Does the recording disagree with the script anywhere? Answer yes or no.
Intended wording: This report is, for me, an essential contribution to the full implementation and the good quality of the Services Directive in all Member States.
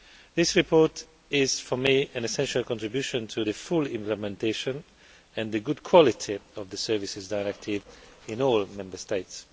no